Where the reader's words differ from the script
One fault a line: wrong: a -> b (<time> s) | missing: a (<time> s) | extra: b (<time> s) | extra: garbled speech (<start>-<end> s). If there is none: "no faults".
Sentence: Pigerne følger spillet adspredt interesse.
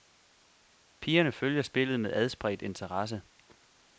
extra: med (2.0 s)